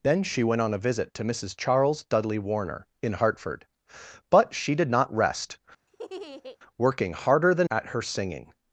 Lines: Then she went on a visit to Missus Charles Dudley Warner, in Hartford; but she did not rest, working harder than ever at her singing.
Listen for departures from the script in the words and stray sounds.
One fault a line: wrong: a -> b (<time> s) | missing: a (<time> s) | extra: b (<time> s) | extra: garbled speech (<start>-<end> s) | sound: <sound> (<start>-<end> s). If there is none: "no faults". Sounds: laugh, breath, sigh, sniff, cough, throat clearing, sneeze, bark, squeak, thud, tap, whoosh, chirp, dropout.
sound: laugh (5.9-6.6 s)
missing: ever (7.7 s)